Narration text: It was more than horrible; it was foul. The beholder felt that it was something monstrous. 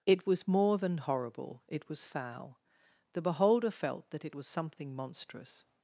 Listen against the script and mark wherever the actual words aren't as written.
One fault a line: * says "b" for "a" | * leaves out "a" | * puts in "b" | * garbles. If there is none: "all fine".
all fine